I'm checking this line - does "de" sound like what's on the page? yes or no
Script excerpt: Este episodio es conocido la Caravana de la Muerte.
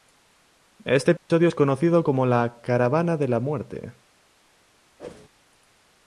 yes